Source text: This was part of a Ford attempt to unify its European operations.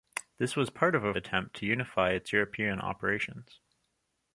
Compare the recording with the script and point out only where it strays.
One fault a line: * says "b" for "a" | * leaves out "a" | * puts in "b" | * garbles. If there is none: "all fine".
* leaves out "Ford"